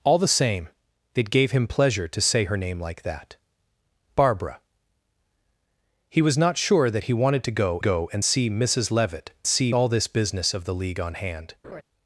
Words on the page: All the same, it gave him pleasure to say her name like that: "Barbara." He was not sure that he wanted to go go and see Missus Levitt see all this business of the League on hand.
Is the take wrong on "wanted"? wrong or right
right